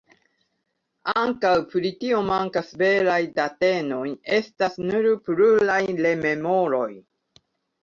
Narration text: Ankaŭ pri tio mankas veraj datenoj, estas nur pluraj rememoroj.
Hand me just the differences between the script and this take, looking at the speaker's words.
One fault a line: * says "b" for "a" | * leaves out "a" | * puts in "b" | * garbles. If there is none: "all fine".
all fine